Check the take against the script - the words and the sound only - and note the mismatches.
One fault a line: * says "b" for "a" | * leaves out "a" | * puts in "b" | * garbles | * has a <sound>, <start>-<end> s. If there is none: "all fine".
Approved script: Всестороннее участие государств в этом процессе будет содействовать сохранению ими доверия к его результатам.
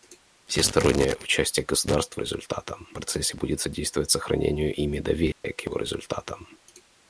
* says "результатам" for "этом"
* has a dropout, 5.3-5.4 s